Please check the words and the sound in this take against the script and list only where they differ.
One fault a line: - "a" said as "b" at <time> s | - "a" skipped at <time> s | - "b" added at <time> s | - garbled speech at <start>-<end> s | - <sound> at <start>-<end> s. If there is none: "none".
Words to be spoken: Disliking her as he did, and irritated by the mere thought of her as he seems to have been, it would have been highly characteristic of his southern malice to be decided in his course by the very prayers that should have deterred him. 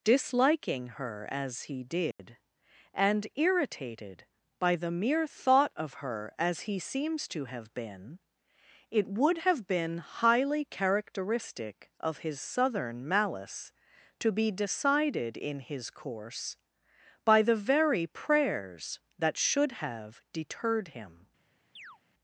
- dropout at 2.1-2.2 s
- chirp at 21.8-22.0 s